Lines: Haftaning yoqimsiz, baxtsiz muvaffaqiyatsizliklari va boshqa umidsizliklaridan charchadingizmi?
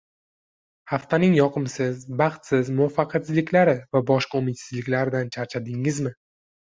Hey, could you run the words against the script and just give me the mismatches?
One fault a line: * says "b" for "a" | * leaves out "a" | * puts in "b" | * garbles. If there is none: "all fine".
all fine